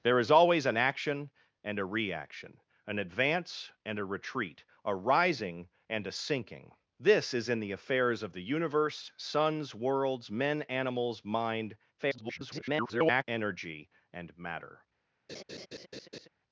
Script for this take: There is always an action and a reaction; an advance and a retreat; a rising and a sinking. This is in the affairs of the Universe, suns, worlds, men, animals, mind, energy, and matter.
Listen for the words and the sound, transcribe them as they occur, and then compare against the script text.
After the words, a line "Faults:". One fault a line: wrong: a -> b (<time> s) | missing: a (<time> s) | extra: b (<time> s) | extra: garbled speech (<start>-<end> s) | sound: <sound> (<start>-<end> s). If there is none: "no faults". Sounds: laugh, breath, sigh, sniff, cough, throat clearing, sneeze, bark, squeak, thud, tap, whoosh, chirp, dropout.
There is always an action and a reaction; an advance and a retreat; a rising and a sinking. This is in the affairs of the Universe, suns, worlds, men, animals, mind, [garbled] energy, and matter.
Faults:
extra: garbled speech (12.0-13.2 s)
sound: laugh (15.3-16.3 s)